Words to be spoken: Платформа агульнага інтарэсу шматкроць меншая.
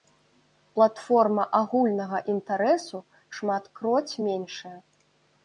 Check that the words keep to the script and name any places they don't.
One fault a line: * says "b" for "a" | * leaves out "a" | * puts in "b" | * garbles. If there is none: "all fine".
all fine